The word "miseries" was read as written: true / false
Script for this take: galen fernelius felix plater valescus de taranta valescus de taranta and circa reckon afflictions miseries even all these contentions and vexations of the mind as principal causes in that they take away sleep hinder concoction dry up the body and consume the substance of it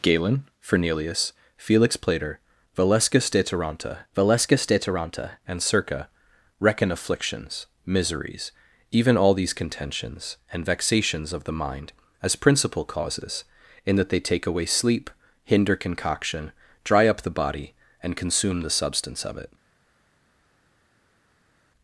true